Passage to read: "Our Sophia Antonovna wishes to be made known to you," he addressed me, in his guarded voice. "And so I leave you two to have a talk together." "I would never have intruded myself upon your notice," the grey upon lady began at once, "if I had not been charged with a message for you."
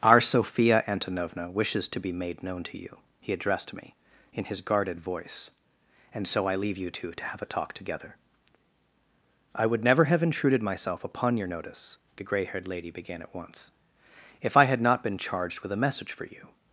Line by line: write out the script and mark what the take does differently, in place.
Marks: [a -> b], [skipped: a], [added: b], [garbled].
"Our Sophia Antonovna wishes to be made known to you," he addressed me, in his guarded voice. "And so I leave you two to have a talk together." "I would never have intruded myself upon your notice," the grey [upon -> haired] lady began at once, "if I had not been charged with a message for you."